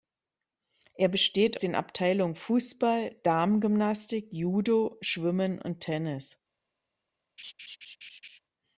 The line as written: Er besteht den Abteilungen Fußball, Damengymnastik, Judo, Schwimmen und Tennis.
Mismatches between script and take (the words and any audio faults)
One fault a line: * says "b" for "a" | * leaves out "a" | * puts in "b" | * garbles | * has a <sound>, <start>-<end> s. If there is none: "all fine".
* has a laugh, 7.4-8.4 s